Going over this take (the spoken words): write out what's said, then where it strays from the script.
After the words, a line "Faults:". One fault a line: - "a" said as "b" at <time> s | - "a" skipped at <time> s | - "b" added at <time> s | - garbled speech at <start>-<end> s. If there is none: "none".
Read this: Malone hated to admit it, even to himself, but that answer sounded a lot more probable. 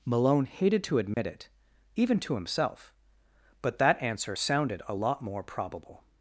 Malone hated to admit it, even to himself, but that answer sounded a lot more probable.
Faults:
none